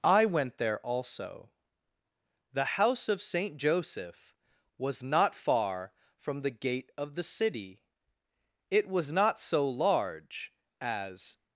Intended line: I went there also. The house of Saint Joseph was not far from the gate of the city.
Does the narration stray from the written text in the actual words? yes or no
yes